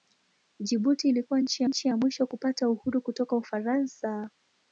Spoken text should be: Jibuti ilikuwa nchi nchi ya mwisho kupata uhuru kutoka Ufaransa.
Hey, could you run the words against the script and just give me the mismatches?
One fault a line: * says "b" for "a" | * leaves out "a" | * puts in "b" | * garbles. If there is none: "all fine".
all fine